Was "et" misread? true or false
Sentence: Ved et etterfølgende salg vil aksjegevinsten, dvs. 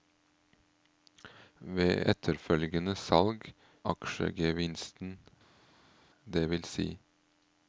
true